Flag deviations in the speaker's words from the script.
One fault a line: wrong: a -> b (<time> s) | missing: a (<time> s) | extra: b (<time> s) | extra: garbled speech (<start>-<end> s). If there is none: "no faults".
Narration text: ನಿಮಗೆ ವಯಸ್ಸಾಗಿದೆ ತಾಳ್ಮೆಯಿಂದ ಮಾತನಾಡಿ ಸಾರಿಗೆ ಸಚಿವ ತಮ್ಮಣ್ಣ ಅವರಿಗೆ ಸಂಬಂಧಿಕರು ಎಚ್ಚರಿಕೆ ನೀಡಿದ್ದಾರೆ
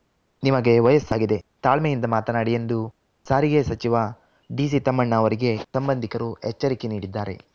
extra: ಎಂದು (2.5 s)
extra: ಡಿಸಿ (4.5 s)